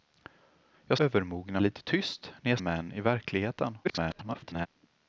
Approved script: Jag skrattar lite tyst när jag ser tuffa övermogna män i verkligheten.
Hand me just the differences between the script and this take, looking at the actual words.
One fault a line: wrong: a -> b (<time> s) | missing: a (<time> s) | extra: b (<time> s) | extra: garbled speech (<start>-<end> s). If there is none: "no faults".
wrong: skrattar -> övermogna (1.0 s)
missing: ser tuffa övermogna (2.6 s)
extra: garbled speech (3.8-4.7 s)